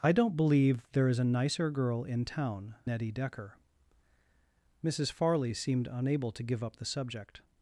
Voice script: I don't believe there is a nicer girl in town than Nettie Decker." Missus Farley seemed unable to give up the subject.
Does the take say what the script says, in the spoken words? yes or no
no